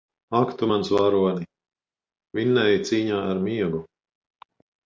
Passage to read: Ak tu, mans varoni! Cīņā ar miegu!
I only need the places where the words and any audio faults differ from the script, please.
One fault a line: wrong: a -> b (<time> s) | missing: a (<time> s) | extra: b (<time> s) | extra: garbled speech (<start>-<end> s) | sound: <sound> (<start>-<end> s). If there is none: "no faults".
extra: Vinnēji (2.4 s)